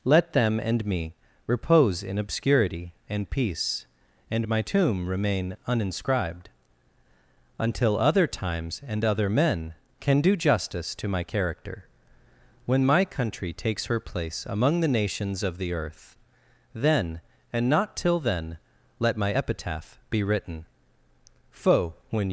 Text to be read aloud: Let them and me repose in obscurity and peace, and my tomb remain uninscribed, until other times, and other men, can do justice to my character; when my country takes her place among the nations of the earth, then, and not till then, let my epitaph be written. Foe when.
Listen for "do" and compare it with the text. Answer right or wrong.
right